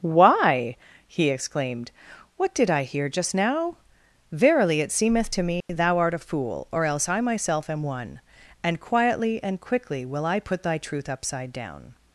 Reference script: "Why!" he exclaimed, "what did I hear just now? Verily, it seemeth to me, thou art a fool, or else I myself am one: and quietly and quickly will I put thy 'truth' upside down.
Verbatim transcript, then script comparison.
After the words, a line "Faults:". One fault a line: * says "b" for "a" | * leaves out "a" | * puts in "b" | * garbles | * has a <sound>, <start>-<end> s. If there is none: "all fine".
"Why!" he exclaimed, "what did I hear just now? Verily, it seemeth to me, thou art a fool, or else I myself am one: and quietly and quickly will I put thy 'truth' upside down.
Faults:
* has a dropout, 5.6-5.7 s